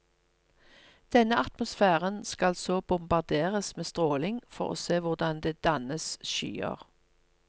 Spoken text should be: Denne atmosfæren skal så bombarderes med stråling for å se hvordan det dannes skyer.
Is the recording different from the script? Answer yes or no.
no